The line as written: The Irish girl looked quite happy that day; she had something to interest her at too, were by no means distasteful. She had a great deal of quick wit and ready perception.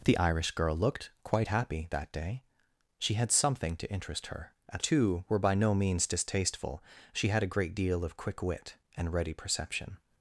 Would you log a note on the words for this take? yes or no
no